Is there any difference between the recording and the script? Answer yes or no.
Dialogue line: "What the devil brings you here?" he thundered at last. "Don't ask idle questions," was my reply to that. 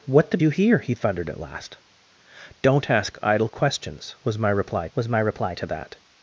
yes